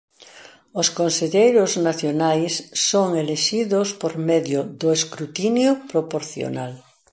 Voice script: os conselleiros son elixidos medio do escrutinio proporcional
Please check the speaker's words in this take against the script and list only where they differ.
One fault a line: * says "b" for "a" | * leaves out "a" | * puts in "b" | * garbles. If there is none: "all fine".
* puts in "nacionais"
* puts in "por"